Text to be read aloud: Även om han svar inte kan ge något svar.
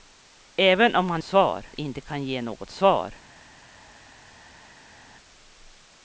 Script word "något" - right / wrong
right